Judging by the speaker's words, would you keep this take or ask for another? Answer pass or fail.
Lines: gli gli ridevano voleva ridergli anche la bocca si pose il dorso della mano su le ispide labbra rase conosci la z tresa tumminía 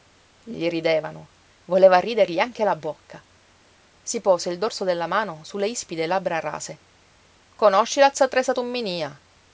pass